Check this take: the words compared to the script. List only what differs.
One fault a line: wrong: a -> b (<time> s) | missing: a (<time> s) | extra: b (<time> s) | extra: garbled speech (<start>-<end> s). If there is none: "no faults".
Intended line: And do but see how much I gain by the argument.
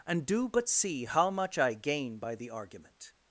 no faults